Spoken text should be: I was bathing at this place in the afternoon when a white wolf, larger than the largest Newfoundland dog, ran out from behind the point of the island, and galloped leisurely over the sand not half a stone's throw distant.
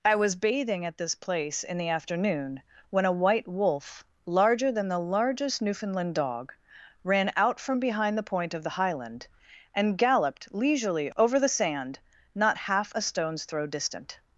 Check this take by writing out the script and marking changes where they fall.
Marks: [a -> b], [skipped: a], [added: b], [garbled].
I was bathing at this place in the afternoon when a white wolf, larger than the largest Newfoundland dog, ran out from behind the point of the [island, -> highland] and galloped leisurely over the sand not half a stone's throw distant.